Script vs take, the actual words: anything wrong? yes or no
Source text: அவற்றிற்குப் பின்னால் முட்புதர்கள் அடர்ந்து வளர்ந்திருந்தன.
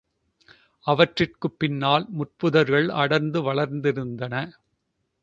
no